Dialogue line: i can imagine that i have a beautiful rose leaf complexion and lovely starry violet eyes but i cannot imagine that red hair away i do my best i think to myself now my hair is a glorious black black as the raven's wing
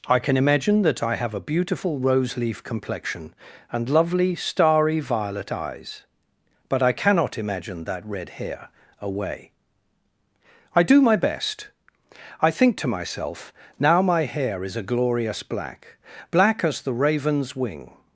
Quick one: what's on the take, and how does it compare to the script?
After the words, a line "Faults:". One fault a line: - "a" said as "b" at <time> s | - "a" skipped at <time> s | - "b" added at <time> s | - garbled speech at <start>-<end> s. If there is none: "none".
i can imagine that i have a beautiful rose leaf complexion and lovely starry violet eyes but i cannot imagine that red hair away i do my best i think to myself now my hair is a glorious black black as the raven's wing
Faults:
none